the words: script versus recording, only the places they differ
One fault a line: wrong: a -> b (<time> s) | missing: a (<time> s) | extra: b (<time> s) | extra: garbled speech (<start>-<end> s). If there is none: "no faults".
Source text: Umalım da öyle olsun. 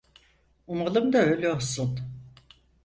no faults